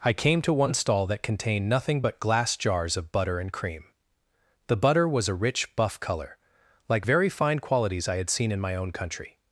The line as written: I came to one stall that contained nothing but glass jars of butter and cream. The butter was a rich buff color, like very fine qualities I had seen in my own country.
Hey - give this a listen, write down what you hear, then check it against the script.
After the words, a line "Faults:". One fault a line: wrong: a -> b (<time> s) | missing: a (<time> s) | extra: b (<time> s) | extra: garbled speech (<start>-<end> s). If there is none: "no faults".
I came to one stall that contained nothing but glass jars of butter and cream. The butter was a rich buff color, like very fine qualities I had seen in my own country.
Faults:
no faults